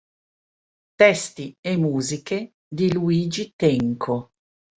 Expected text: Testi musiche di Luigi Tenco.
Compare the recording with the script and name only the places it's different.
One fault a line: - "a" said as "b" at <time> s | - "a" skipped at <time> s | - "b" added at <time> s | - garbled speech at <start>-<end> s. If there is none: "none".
- "e" added at 1.6 s